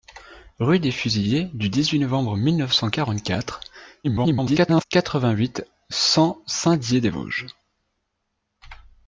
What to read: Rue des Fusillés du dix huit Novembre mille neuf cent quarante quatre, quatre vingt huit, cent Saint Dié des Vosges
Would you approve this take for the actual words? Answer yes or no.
no